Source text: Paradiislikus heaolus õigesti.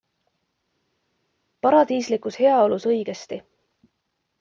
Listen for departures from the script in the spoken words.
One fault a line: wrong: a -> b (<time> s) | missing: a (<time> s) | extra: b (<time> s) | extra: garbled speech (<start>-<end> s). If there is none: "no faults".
no faults